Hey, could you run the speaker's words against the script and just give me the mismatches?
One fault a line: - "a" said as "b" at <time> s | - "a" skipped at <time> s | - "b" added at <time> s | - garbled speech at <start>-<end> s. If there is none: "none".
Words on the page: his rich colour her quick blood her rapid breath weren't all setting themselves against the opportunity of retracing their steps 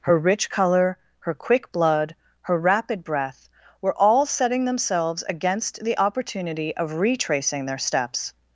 - "his" said as "her" at 0.0 s
- "weren't" said as "were" at 3.8 s